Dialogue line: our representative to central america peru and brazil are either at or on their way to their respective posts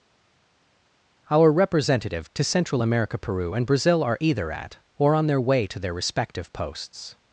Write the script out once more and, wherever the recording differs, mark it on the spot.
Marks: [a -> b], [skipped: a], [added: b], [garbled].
our representative to central america peru and brazil are either at or on their way to their respective posts